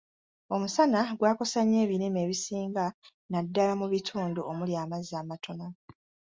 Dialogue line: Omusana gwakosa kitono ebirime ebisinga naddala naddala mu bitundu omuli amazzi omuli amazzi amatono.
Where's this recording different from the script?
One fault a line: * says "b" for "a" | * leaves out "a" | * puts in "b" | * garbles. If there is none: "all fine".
* says "nnyo" for "kitono"
* leaves out "naddala"
* leaves out "omuli amazzi"